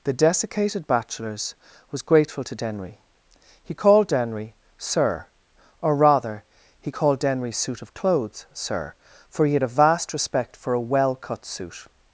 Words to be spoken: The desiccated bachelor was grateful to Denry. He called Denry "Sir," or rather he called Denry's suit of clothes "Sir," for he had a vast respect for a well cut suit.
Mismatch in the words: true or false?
true